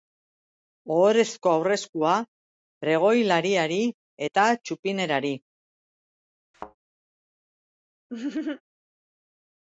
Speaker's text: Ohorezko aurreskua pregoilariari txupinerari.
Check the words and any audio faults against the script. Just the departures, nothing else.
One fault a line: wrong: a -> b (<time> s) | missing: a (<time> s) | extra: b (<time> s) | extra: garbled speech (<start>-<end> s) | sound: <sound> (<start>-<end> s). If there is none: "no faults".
extra: eta (4.3 s)
sound: thud (6.5-6.8 s)
sound: laugh (8.1-8.6 s)